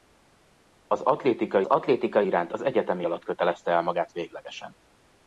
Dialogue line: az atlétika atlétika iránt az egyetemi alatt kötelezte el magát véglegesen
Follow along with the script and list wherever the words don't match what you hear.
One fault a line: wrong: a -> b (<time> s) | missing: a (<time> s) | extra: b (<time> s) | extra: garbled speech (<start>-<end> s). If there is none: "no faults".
no faults